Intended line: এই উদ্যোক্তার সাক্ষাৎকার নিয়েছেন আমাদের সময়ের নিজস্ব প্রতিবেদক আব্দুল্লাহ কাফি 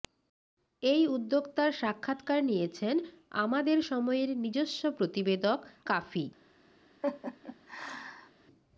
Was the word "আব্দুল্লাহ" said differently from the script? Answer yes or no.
yes